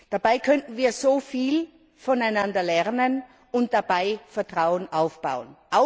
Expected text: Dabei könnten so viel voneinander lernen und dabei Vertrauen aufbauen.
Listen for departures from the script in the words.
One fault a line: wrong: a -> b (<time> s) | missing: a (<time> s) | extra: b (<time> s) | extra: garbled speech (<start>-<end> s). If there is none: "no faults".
extra: wir (0.8 s)